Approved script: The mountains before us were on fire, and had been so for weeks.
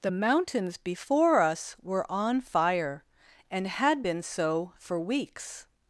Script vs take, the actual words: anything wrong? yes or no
no